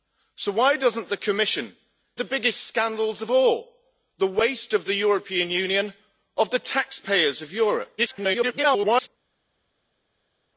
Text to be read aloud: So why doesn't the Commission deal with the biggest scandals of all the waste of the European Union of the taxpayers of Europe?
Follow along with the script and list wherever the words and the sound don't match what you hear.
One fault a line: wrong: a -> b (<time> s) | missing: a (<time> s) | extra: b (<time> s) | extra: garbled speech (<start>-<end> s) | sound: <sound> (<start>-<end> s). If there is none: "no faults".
missing: deal with (1.8 s)
extra: garbled speech (8.0-9.1 s)